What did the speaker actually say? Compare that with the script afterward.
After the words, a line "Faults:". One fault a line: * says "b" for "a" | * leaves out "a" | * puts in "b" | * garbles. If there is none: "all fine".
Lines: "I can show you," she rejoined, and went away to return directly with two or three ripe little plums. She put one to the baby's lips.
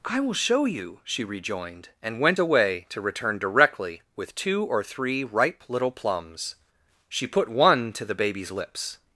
"I will show you," she rejoined, and went away to return directly with two or three ripe little plums. She put one to the baby's lips.
Faults:
* says "will" for "can"